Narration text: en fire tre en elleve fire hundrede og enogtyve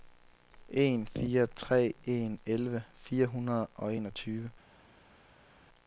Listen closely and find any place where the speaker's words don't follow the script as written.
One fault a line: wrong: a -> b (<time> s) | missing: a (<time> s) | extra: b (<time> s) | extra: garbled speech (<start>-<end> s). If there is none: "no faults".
no faults